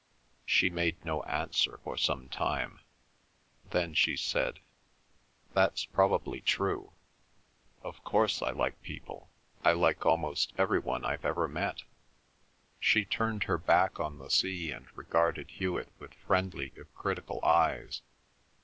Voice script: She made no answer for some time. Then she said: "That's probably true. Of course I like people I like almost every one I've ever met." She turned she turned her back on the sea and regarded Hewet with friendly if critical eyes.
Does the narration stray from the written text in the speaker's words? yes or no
yes